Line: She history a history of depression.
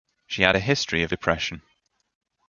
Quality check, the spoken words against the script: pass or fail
fail